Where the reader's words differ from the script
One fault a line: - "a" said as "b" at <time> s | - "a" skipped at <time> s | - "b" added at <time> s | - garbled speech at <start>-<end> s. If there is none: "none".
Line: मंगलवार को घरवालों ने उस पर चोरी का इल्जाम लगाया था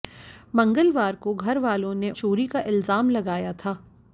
- "उस पर" skipped at 2.1 s